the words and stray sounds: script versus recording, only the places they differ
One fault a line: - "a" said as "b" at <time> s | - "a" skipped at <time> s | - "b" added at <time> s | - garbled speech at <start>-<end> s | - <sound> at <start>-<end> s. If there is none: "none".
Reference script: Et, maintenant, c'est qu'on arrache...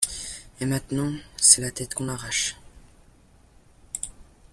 - "la tête" added at 1.6 s